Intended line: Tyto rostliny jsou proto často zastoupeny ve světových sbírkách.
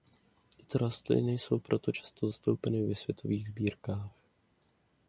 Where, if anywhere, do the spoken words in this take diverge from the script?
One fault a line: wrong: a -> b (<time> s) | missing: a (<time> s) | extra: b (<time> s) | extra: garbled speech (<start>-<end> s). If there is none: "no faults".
no faults